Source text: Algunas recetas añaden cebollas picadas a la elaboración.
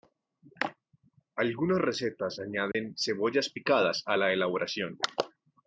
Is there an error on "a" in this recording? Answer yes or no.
no